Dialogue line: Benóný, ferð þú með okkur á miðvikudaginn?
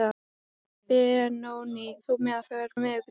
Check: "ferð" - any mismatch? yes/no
yes